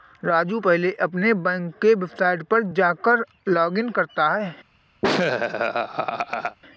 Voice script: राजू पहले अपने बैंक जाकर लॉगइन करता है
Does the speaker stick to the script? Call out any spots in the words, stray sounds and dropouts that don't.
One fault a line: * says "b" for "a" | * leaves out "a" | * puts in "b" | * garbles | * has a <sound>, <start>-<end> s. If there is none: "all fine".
* puts in "के वेबसाइट पर"
* has a laugh, 5.0-6.6 s